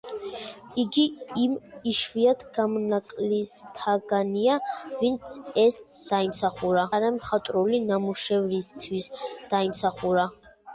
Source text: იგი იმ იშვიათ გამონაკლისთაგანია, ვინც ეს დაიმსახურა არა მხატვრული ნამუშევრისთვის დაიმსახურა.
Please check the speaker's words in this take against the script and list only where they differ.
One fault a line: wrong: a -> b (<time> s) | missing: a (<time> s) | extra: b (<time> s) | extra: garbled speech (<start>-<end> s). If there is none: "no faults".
no faults